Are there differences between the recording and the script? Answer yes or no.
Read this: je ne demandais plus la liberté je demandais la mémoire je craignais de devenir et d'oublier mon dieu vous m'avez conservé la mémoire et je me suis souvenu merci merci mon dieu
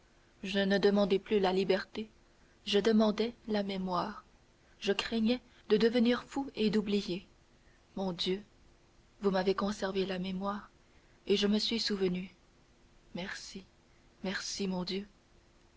yes